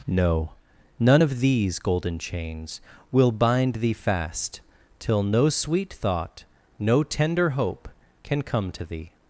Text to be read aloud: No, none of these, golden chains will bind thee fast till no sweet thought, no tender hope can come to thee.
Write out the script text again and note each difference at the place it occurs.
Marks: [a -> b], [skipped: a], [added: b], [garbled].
No, none of these, golden chains will bind thee fast till no sweet thought, no tender hope can come to thee.